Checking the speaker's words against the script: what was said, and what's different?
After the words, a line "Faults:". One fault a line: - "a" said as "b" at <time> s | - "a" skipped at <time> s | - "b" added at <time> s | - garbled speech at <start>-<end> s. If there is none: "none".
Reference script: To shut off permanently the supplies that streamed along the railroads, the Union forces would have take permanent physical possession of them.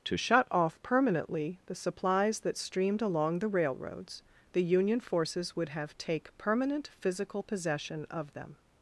To shut off permanently the supplies that streamed along the railroads, the Union forces would have take permanent physical possession of them.
Faults:
none